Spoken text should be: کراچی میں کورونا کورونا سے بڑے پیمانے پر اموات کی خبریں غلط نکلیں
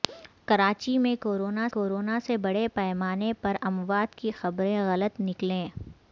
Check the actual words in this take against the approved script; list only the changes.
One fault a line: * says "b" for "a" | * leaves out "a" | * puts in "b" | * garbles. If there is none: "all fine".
all fine